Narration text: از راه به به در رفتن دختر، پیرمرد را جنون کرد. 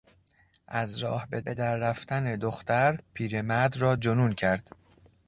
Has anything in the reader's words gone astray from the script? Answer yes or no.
no